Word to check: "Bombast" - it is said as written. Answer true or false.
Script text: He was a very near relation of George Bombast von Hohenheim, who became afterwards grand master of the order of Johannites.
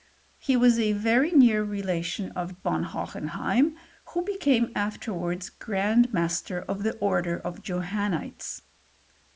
false